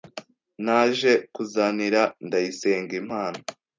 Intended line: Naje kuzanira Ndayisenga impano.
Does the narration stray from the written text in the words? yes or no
no